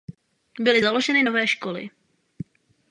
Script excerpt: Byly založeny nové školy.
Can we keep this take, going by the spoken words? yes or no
yes